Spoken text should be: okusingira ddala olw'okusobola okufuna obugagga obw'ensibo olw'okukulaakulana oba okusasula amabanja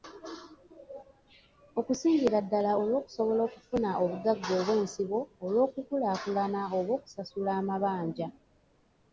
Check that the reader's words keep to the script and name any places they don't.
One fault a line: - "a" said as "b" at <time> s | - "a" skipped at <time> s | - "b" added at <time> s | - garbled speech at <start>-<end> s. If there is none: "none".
none